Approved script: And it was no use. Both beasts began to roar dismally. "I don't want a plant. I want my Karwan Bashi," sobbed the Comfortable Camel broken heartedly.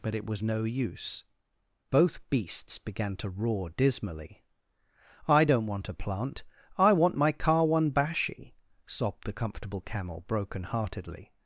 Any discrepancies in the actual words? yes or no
yes